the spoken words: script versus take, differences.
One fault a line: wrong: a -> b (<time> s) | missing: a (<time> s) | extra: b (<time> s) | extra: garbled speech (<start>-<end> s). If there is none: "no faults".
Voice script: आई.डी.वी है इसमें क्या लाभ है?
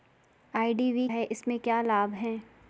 no faults